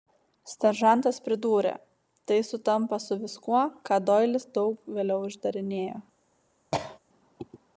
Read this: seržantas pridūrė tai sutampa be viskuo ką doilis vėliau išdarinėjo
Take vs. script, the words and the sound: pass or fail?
fail